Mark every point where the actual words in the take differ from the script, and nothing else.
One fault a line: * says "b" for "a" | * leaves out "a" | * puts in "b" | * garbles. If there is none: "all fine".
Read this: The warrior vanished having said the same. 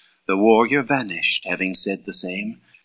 all fine